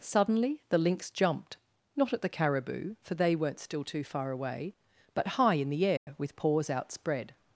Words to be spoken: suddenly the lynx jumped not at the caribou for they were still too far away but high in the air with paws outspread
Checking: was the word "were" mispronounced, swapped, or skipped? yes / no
yes